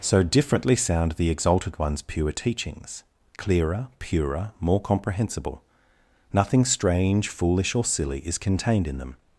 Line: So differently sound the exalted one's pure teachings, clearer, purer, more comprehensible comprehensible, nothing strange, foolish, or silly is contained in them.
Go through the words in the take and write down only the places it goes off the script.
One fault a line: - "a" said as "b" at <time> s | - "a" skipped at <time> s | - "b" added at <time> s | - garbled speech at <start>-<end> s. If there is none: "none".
- "comprehensible" skipped at 5.6 s